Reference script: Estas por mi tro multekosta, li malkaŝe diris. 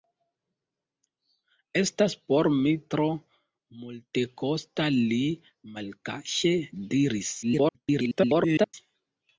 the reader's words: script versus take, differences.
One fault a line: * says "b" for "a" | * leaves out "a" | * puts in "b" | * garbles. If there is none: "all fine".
* garbles